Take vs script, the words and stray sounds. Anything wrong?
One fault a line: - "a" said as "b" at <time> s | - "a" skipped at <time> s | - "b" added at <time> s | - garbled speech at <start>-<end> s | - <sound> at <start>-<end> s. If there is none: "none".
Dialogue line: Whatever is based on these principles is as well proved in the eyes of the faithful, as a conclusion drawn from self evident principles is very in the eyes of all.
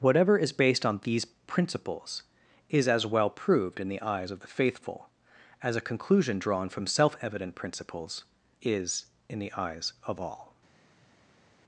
- "very" skipped at 9.1 s